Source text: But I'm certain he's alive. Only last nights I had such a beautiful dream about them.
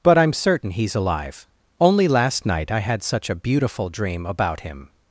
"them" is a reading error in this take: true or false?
true